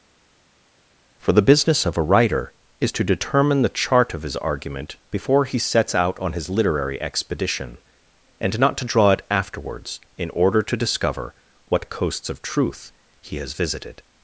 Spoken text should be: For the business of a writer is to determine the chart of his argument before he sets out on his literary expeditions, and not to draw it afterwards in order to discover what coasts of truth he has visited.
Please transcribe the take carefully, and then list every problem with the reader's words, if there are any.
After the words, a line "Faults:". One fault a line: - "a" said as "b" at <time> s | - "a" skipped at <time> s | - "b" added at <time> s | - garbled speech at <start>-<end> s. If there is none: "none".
For the business of a writer is to determine the chart of his argument before he sets out on his literary expedition, and not to draw it afterwards in order to discover what coasts of truth he has visited.
Faults:
- "expeditions" said as "expedition" at 7.0 s